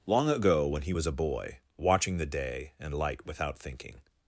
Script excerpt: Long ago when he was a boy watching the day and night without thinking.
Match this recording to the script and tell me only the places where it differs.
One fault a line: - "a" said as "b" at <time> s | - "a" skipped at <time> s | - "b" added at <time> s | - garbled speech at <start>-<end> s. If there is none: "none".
- "night" said as "light" at 2.9 s